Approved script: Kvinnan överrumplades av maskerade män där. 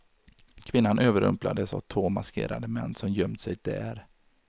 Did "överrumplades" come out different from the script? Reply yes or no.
no